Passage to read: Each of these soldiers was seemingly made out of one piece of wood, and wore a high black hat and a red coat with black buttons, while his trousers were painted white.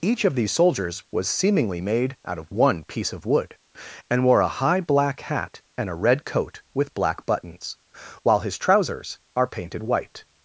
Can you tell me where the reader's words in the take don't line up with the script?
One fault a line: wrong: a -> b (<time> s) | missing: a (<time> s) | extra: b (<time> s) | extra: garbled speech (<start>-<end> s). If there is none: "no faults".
wrong: were -> are (9.4 s)